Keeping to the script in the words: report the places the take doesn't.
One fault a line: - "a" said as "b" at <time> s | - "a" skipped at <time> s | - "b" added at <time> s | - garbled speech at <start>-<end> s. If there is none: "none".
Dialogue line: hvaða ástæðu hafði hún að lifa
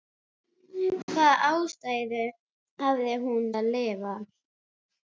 none